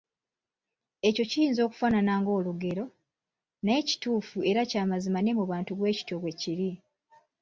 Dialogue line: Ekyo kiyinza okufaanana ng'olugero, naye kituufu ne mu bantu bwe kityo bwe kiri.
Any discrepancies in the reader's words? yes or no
yes